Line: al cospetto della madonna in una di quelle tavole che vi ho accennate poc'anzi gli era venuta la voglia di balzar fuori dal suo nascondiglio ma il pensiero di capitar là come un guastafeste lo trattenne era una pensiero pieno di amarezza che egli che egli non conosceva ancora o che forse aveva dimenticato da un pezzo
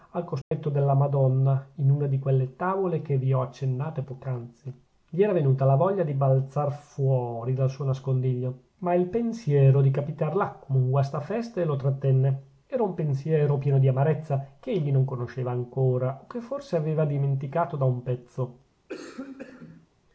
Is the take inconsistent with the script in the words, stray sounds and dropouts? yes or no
yes